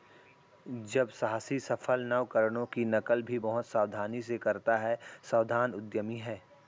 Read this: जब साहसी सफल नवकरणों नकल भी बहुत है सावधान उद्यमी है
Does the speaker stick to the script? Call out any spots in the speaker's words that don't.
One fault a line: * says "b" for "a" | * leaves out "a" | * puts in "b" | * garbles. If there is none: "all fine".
* puts in "की"
* puts in "सावधानी से करता"